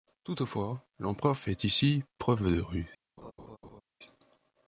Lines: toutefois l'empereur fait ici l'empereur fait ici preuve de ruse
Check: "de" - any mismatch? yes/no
no